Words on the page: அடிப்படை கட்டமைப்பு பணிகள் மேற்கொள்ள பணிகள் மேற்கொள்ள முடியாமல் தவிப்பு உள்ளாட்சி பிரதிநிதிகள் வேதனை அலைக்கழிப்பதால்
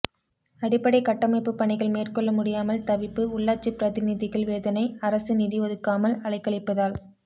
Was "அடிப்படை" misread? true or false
false